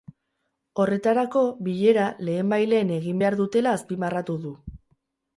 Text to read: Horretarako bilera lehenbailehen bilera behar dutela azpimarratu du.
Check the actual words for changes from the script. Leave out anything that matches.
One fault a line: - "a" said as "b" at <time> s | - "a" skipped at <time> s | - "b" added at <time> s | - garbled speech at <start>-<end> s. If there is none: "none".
- "bilera" said as "egin" at 3.0 s